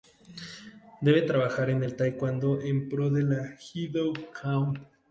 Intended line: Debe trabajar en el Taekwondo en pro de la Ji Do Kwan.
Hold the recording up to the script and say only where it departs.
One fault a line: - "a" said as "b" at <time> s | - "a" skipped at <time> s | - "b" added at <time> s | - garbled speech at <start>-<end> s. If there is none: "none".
none